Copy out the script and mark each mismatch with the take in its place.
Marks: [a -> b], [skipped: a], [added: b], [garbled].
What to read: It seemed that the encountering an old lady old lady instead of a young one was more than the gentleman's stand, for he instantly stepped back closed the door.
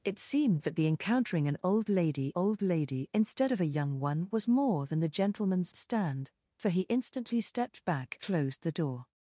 It seemed that the encountering an old lady old lady instead of a young one was more than the gentleman's stand, for he instantly stepped back closed the door.